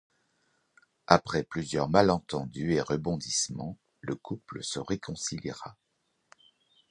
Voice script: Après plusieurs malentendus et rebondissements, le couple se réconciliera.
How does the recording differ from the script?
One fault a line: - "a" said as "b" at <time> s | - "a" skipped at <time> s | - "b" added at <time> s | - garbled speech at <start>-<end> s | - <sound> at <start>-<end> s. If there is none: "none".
none